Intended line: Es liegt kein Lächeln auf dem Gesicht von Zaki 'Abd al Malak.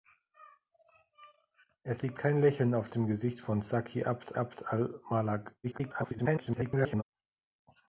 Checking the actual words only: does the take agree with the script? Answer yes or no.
no